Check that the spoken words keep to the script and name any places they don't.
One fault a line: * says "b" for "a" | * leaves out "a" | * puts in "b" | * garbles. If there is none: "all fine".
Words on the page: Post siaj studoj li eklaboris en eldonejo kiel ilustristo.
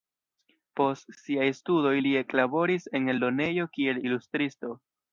all fine